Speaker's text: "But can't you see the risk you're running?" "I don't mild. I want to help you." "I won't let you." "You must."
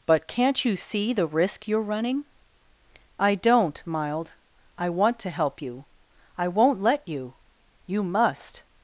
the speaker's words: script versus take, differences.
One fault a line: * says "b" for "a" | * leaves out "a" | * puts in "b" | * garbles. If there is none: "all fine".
all fine